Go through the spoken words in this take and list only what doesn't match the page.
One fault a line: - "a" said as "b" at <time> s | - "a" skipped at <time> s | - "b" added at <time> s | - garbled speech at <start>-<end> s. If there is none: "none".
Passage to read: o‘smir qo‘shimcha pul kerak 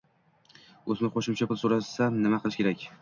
- "so‘rasa nima qilish" added at 1.6 s